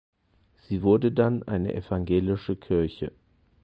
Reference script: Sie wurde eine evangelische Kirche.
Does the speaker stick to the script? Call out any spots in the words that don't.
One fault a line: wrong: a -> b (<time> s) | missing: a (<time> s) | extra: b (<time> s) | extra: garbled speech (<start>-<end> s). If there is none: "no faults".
extra: dann (1.1 s)